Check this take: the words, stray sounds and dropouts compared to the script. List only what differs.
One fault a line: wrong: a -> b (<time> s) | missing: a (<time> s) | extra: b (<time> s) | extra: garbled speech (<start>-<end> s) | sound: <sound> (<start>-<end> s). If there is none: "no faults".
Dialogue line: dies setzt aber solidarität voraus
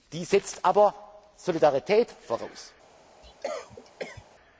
sound: cough (3.2-4.2 s)